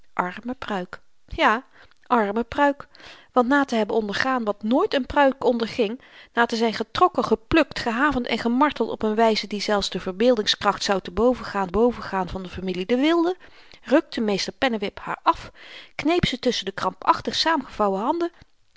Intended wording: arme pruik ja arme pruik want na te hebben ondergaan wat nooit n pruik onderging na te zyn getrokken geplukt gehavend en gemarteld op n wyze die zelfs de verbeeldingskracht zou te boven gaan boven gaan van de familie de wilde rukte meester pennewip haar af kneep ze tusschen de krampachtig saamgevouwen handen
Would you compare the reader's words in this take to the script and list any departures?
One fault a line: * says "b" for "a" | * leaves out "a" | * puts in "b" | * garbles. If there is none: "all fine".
all fine